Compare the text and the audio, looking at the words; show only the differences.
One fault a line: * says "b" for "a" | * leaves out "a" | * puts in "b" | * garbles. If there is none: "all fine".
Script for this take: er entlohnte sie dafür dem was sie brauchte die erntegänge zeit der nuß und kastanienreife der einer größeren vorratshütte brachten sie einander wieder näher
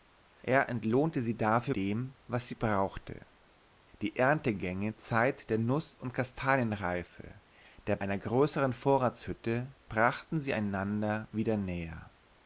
all fine